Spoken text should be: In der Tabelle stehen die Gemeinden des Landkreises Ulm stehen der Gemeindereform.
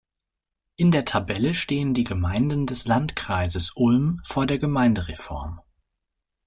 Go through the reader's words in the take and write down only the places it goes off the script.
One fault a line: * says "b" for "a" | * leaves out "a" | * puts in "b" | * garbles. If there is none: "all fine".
* says "vor" for "stehen"